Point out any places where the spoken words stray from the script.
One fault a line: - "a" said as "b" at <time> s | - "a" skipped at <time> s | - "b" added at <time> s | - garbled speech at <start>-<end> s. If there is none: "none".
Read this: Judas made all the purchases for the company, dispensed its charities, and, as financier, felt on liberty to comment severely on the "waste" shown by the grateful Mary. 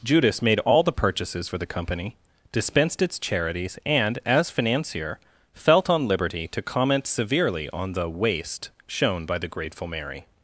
none